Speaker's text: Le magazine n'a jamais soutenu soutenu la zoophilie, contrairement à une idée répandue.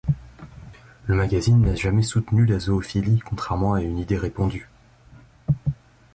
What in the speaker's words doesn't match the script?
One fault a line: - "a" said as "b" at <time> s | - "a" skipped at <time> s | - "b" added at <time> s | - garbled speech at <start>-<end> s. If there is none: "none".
- "soutenu" skipped at 2.5 s